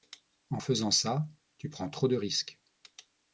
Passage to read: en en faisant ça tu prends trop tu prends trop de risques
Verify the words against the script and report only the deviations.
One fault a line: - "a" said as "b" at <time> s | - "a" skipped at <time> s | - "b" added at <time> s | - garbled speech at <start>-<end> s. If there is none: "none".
- "en" skipped at 0.6 s
- "tu prends trop" skipped at 2.1 s